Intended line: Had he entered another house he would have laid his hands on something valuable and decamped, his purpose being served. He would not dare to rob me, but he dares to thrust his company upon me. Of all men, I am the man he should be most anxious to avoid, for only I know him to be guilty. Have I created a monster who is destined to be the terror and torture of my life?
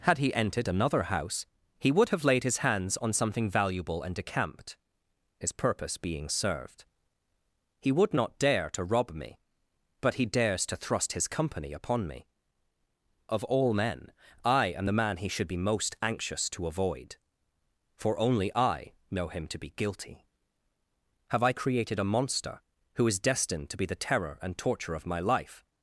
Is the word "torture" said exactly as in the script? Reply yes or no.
yes